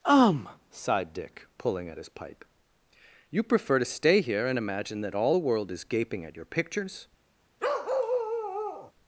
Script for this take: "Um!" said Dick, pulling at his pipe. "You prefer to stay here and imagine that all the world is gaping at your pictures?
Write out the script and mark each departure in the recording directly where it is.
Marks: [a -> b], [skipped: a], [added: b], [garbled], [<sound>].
"Um!" [said -> sighed] Dick, pulling at his pipe. "You prefer to stay here and imagine that all the world is gaping at your pictures? [bark]